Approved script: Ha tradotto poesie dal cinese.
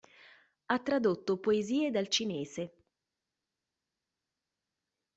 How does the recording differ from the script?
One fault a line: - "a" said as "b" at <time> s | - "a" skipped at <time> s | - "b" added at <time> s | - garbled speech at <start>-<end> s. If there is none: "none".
none